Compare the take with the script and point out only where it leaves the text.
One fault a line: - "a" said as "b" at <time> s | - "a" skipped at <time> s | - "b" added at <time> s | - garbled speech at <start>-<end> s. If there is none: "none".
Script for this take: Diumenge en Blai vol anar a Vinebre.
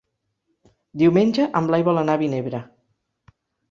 none